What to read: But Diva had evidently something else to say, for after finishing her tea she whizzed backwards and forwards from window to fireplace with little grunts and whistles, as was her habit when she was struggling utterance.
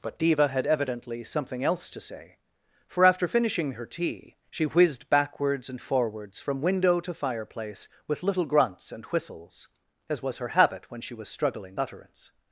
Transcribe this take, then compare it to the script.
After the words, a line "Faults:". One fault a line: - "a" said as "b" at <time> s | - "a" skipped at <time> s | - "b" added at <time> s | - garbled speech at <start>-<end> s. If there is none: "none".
But Diva had evidently something else to say, for after finishing her tea she whizzed backwards and forwards from window to fireplace with little grunts and whistles, as was her habit when she was struggling utterance.
Faults:
none